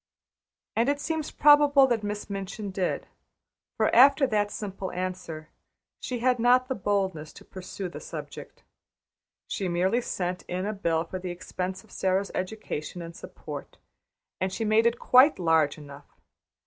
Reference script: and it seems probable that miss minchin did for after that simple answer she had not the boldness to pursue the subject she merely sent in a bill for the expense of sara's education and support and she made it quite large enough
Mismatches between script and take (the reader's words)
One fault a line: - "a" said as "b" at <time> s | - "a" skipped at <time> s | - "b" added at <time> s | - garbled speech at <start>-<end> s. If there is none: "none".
none